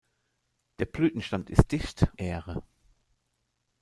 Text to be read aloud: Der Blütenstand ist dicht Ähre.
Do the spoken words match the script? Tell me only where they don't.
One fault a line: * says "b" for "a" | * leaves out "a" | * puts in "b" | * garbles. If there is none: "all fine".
all fine